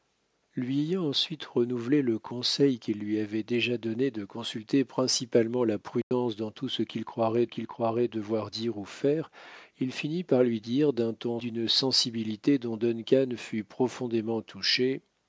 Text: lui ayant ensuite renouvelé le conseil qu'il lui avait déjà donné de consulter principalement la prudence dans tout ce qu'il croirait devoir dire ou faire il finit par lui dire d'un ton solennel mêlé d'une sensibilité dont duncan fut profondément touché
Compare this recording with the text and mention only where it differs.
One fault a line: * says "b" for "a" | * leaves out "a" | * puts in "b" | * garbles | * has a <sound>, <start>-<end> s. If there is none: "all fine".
* has a dropout, 6.0-6.1 s
* puts in "qu'il croirait"
* leaves out "solennel mêlé"